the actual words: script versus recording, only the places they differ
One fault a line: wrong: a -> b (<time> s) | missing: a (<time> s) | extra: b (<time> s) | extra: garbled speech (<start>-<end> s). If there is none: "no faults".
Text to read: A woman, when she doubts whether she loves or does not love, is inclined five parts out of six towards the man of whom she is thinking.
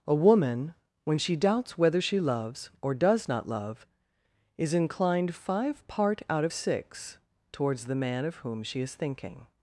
wrong: parts -> part (5.9 s)